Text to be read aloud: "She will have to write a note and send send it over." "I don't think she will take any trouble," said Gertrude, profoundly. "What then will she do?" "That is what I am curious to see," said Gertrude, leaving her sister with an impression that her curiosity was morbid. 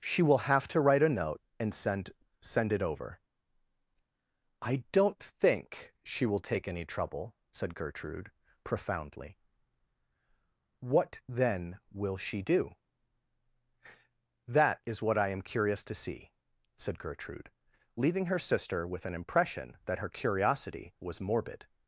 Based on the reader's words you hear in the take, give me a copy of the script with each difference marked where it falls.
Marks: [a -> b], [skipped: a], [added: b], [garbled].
"She will have to write a note and send send it over." "I don't think she will take any trouble," said Gertrude, profoundly. "What then will she do?" "That is what I am curious to see," said Gertrude, leaving her sister with an impression that her curiosity was morbid.